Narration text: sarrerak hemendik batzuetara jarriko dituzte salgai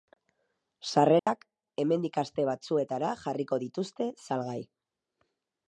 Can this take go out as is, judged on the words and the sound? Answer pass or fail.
fail